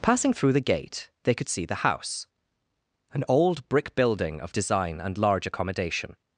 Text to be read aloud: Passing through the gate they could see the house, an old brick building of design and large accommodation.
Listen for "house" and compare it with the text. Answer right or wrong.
right